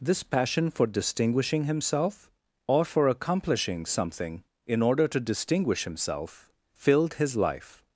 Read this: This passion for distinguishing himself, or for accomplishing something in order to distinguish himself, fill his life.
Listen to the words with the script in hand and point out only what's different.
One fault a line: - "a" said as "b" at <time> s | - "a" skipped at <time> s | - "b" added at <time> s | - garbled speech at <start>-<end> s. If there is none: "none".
- "fill" said as "filled" at 6.7 s